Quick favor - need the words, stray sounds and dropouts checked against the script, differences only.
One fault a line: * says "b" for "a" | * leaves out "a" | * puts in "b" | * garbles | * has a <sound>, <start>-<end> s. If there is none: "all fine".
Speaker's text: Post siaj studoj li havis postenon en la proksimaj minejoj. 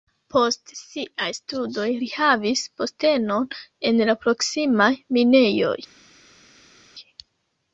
all fine